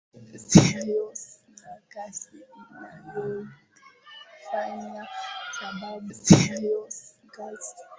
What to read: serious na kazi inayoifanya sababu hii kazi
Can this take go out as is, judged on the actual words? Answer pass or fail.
fail